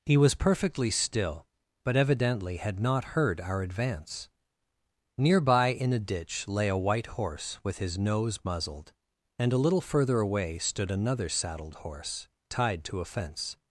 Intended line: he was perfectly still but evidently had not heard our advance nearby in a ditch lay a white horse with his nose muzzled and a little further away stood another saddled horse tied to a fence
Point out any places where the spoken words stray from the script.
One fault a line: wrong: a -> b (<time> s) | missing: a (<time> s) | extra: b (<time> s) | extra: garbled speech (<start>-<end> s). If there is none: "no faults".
no faults